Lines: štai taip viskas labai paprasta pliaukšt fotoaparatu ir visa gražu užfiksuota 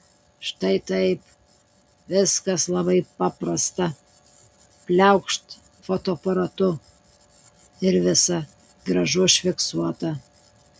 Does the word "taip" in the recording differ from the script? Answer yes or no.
no